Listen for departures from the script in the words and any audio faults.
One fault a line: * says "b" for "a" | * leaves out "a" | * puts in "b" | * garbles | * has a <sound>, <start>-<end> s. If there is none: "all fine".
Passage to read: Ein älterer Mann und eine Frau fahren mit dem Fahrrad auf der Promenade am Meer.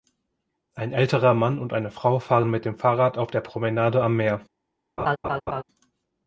* has a laugh, 5.0-5.6 s